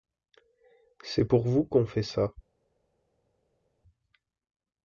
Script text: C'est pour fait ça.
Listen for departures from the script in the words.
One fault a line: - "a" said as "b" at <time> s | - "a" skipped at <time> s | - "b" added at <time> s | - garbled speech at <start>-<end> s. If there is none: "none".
- "vous qu'on" added at 1.4 s